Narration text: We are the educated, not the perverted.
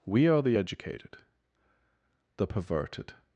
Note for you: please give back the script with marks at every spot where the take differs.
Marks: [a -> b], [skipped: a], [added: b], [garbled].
We are the educated, [skipped: not] the perverted.